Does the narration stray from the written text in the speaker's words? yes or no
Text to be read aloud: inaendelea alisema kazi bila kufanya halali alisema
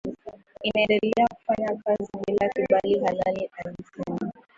yes